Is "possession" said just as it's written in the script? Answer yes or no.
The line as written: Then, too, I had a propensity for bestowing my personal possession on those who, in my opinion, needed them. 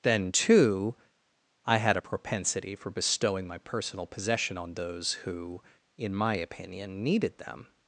yes